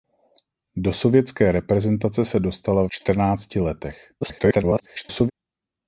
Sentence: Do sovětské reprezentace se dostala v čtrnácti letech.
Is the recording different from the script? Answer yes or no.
yes